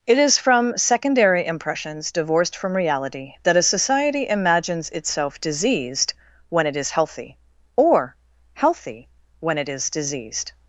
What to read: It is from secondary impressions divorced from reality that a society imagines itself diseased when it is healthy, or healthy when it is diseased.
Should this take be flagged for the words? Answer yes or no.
no